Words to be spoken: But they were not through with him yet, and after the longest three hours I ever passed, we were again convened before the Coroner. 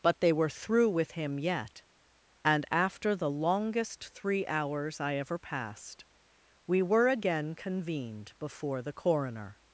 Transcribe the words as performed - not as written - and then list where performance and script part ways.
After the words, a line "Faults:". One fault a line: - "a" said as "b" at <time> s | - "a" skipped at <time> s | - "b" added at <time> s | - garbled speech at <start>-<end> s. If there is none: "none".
But they were through with him yet, and after the longest three hours I ever passed, we were again convened before the Coroner.
Faults:
- "not" skipped at 0.5 s